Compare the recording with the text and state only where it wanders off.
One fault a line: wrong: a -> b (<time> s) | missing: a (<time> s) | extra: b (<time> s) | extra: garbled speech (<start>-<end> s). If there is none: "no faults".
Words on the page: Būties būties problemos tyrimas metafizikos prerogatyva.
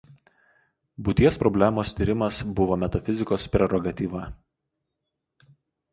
missing: būties (1.4 s)
extra: buvo (2.6 s)